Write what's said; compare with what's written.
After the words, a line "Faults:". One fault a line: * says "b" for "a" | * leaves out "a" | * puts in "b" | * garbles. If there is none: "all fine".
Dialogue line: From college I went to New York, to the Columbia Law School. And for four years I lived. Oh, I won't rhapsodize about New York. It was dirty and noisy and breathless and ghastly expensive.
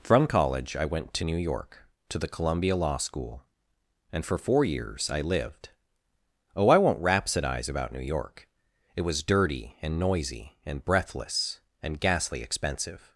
From college I went to New York, to the Columbia Law School. And for four years I lived. Oh, I won't rhapsodize about New York. It was dirty and noisy and breathless and ghastly expensive.
Faults:
all fine